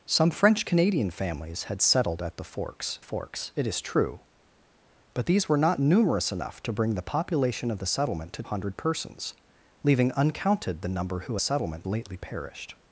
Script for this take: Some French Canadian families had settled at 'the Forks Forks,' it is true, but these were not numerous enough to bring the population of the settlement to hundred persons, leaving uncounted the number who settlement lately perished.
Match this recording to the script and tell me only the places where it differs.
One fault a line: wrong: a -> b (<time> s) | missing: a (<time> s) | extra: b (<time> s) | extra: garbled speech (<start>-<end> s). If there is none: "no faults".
no faults